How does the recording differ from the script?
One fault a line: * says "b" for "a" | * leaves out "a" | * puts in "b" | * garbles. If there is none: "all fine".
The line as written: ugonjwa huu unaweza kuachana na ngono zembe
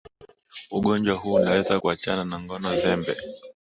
all fine